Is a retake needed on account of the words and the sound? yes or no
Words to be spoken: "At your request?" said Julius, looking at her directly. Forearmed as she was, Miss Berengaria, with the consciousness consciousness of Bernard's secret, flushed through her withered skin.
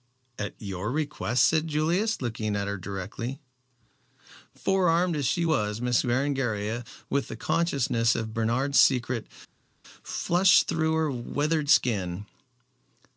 yes